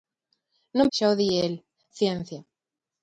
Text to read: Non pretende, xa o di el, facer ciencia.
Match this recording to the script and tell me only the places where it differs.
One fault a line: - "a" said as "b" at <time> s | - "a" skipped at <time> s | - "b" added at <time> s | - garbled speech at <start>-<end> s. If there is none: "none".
- "pretende" skipped at 0.9 s
- "facer" skipped at 1.5 s